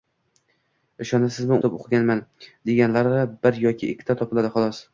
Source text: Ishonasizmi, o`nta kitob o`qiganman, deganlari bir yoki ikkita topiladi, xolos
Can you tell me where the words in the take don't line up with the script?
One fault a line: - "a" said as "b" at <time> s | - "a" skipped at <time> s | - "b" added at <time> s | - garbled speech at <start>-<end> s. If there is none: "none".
- "o`nta" skipped at 1.6 s